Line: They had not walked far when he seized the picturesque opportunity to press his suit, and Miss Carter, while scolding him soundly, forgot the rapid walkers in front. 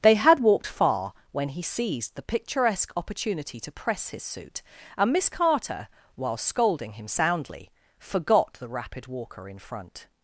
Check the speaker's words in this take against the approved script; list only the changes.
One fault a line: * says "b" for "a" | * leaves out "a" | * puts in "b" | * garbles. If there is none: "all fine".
* leaves out "not"
* says "walker" for "walkers"